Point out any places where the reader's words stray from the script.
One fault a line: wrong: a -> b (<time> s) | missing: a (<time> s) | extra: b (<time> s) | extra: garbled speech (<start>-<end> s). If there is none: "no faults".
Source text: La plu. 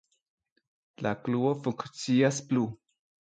extra: klubo funkcias (1.3 s)